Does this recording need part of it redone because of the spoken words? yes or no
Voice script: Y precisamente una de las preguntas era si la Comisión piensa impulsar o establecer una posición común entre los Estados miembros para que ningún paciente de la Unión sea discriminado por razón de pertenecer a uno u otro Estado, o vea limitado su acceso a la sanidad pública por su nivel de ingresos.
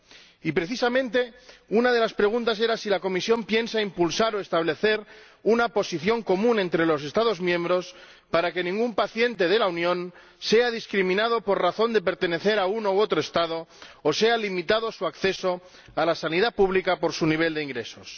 no